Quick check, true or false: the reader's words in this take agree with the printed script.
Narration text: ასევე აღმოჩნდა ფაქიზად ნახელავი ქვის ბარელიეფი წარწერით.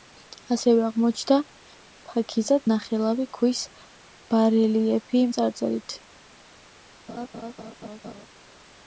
true